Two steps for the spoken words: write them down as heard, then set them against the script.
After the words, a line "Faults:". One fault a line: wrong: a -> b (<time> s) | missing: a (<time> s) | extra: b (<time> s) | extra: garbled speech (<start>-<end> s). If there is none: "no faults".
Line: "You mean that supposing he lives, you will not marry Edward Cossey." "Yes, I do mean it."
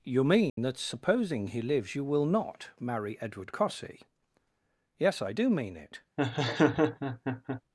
"You mean that supposing he lives, you will not marry Edward Cossey." "Yes, I do mean it."
Faults:
no faults